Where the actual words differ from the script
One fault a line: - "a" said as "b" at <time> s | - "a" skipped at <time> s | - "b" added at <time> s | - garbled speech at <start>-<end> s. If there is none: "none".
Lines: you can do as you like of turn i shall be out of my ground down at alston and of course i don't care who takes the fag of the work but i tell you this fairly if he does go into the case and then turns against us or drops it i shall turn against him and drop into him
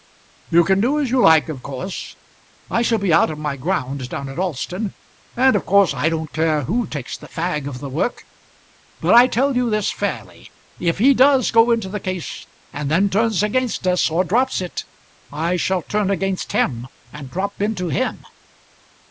- "turn" said as "course" at 1.6 s